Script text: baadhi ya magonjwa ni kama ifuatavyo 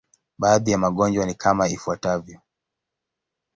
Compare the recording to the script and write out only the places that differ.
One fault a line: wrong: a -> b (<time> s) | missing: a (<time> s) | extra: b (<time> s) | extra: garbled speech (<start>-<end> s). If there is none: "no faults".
no faults